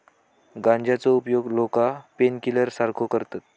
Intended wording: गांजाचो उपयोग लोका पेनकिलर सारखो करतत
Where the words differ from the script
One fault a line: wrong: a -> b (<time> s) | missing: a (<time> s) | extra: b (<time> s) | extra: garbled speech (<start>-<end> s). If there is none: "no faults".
no faults